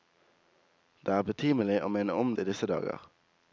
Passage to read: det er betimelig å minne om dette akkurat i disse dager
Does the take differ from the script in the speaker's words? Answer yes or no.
yes